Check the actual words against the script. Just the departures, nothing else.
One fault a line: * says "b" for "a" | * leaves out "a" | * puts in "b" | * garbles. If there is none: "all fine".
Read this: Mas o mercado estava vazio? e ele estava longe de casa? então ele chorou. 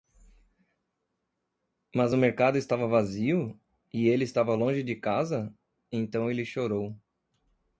all fine